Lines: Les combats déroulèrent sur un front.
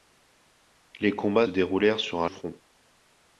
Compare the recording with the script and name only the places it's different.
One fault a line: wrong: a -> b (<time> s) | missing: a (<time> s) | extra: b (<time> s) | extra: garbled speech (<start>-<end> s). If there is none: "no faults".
no faults